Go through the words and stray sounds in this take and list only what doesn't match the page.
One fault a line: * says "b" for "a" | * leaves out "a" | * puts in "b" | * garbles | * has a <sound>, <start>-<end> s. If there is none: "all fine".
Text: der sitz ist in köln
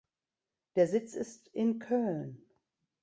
all fine